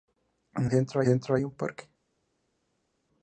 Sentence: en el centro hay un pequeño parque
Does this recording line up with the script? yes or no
no